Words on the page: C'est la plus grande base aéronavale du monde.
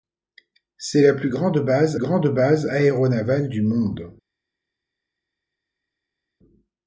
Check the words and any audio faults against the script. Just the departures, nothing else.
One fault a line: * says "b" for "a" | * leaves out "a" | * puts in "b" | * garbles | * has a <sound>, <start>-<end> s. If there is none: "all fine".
* puts in "grande base"